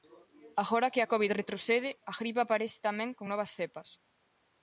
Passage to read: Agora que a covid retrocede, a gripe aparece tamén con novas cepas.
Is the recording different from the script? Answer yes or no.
no